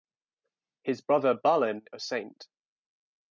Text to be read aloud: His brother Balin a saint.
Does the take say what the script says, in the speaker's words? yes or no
yes